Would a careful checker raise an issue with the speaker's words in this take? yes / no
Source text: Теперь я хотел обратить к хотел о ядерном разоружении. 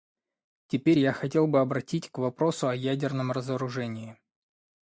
yes